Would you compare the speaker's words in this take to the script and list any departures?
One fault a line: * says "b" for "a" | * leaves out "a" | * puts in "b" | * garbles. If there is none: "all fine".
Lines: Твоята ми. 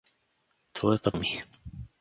all fine